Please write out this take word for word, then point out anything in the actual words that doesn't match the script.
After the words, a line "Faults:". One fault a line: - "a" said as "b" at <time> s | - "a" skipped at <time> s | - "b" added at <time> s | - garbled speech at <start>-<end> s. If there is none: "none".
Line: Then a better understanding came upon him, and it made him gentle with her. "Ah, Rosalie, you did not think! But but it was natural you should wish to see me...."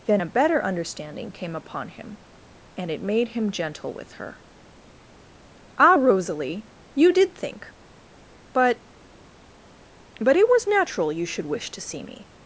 Then a better understanding came upon him, and it made him gentle with her. "Ah, Rosalie, you did think! But but it was natural you should wish to see me...."
Faults:
- "not" skipped at 7.3 s